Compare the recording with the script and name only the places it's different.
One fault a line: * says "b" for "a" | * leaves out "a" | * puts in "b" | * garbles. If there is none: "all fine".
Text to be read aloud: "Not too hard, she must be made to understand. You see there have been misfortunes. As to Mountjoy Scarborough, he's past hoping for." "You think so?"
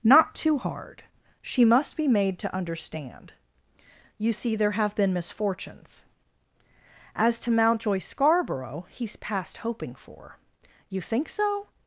all fine